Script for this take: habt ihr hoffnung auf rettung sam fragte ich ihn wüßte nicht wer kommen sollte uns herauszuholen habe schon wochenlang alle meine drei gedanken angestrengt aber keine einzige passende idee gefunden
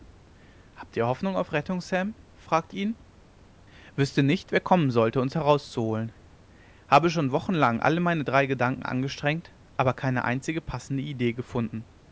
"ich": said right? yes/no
no